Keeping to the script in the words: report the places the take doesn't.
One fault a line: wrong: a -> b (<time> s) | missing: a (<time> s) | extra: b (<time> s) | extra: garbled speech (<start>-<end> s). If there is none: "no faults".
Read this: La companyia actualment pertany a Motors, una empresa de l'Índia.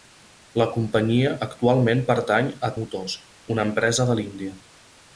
no faults